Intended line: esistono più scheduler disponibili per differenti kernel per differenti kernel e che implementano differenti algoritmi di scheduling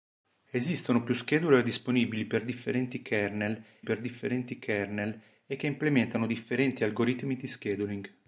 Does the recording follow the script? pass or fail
pass